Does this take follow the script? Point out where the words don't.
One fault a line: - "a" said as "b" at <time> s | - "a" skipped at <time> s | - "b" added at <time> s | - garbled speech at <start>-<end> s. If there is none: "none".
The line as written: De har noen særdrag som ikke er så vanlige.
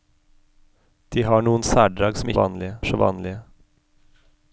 - "ikke" said as "vanlige" at 2.4 s